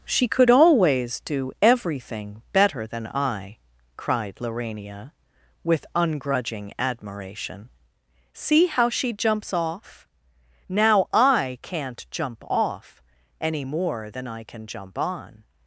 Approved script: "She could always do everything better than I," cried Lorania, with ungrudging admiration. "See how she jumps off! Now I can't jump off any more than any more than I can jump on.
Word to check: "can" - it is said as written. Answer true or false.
true